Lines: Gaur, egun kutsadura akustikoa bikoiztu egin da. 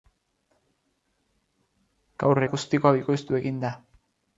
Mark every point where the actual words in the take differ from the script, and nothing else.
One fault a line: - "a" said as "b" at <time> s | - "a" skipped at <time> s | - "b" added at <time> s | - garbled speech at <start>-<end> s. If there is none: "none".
- "egun kutsadura" skipped at 2.4 s